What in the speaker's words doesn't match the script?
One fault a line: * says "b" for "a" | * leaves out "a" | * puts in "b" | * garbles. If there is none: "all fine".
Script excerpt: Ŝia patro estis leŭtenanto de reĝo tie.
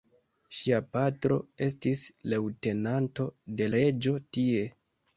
all fine